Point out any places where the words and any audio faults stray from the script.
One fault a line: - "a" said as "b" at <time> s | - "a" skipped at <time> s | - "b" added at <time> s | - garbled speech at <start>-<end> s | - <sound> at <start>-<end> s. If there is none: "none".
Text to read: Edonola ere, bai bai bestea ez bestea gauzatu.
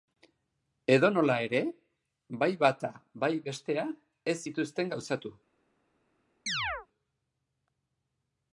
- "bata" added at 2.6 s
- "bestea" said as "zituzten" at 4.5 s
- chirp at 6.5-6.9 s